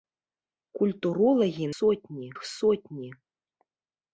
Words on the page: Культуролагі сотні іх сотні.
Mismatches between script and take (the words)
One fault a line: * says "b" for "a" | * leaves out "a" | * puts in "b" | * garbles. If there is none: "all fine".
all fine